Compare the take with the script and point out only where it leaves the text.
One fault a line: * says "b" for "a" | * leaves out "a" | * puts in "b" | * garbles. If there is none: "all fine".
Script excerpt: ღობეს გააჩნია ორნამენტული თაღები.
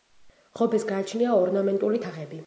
all fine